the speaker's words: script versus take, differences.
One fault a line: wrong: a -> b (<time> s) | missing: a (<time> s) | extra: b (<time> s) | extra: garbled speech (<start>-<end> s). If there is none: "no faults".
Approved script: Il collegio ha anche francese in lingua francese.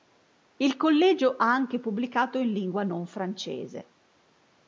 wrong: francese -> pubblicato (1.8 s)
extra: non (2.8 s)